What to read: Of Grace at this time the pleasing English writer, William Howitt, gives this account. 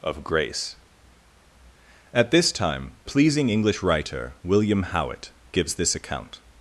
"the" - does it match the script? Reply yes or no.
no